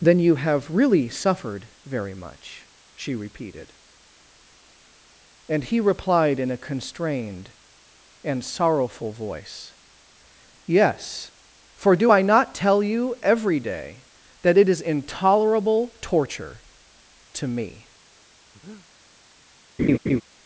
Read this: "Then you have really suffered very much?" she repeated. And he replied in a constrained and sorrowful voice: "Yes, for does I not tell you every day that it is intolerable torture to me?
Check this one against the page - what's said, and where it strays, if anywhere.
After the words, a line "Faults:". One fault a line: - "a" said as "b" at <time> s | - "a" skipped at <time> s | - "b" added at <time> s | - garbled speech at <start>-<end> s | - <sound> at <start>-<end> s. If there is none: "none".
"Then you have really suffered very much?" she repeated. And he replied in a constrained and sorrowful voice: "Yes, for do I not tell you every day that it is intolerable torture to me?
Faults:
- "does" said as "do" at 11.9 s
- breath at 18.5-18.9 s
- laugh at 19.8-20.2 s